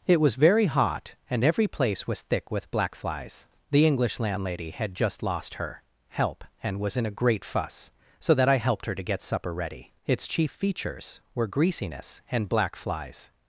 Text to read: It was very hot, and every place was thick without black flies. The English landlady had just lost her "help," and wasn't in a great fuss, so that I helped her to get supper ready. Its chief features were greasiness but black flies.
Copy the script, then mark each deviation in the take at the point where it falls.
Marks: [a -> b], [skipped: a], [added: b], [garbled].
It was very hot, and every place was thick [without -> with] black flies. The English landlady had just lost her "help," and [wasn't -> was] in a great fuss, so that I helped her to get supper ready. Its chief features were greasiness [but -> and] black flies.